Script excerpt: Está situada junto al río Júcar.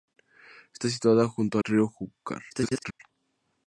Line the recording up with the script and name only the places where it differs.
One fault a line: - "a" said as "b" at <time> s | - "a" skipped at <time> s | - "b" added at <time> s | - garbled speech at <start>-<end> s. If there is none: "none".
- "al" skipped at 1.6 s
- garbled speech at 2.5-3.0 s